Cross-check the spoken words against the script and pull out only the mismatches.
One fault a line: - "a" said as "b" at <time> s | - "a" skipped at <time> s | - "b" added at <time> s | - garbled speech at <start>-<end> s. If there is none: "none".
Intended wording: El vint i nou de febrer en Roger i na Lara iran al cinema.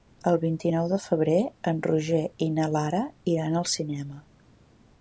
none